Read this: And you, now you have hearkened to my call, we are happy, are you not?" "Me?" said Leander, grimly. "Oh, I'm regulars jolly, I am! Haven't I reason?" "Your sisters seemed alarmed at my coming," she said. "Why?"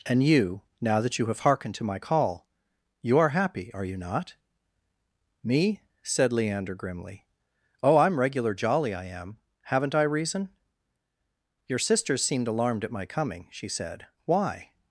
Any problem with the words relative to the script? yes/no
yes